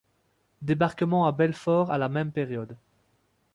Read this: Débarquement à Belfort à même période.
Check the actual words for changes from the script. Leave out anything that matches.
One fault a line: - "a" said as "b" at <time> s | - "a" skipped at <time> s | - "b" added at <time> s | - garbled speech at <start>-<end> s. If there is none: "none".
- "la" added at 2.0 s